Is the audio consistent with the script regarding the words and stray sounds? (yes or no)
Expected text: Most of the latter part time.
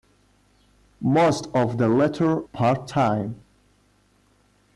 yes